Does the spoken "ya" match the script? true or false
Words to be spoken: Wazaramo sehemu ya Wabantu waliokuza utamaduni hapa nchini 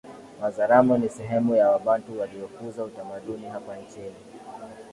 true